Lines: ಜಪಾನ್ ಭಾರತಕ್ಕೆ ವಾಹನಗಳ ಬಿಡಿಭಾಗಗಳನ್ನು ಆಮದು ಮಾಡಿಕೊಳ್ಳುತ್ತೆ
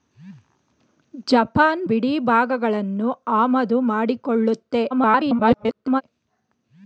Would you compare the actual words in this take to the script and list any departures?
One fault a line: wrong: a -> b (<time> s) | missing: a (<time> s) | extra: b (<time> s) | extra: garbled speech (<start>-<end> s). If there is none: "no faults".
missing: ಭಾರತಕ್ಕೆ ವಾಹನಗಳ (1.8 s)
extra: garbled speech (4.9-6.0 s)